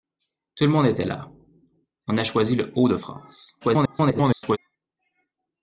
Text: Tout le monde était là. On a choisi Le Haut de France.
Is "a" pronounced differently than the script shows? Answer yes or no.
no